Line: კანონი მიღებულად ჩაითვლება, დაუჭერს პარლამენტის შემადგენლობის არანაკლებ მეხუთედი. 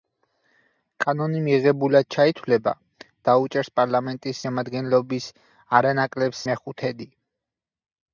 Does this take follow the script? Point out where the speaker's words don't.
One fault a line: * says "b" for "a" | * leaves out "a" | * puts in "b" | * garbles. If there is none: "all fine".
all fine